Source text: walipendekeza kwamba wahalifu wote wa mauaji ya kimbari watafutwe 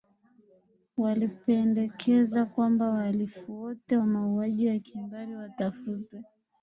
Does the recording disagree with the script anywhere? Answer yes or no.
no